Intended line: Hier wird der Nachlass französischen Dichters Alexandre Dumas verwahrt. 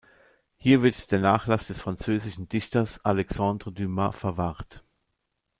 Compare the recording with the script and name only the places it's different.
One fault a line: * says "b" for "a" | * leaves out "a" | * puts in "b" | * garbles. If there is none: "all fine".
* puts in "des"